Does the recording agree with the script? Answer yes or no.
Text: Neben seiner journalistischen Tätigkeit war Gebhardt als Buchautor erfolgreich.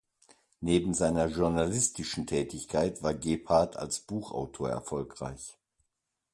yes